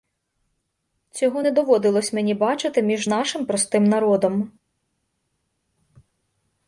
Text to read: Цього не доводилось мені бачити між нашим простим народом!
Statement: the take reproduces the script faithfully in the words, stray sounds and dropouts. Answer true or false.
true